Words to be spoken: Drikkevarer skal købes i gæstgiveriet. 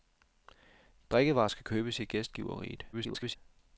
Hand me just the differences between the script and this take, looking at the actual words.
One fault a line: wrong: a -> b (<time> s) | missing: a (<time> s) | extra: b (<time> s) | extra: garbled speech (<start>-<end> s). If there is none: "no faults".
extra: garbled speech (2.9-3.4 s)